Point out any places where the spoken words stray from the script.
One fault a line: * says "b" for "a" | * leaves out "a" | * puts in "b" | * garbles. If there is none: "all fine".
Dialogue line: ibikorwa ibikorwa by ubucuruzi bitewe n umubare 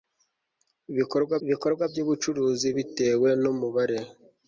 all fine